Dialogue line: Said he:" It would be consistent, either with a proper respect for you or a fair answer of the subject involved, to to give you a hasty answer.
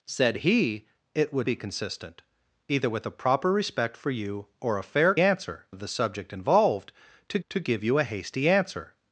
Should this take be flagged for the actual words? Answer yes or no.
no